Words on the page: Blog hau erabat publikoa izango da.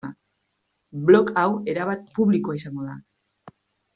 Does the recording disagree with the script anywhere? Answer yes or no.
no